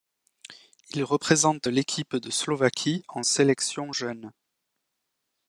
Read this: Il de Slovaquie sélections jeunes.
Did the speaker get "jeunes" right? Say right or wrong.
right